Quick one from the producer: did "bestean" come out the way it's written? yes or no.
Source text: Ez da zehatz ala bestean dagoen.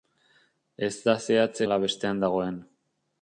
yes